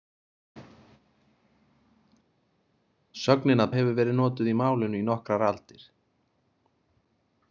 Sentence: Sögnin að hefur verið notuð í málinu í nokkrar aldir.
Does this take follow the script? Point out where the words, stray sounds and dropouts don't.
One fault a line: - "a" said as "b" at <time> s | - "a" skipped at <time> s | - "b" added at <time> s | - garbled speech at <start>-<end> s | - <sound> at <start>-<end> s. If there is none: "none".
none